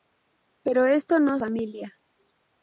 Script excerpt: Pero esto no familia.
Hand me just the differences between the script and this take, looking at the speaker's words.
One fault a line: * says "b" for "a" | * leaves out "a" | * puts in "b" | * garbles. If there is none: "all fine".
all fine